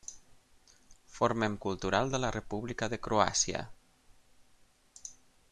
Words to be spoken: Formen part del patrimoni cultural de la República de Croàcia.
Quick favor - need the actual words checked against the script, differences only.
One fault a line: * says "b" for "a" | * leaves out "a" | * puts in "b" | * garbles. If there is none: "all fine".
* leaves out "part del patrimoni"